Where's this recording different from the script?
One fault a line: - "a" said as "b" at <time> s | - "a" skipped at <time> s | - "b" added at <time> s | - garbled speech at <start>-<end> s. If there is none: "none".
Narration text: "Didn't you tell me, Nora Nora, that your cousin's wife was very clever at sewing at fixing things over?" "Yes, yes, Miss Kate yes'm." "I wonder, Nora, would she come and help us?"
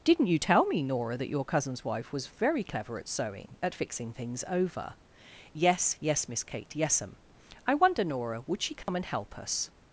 - "Nora" skipped at 1.1 s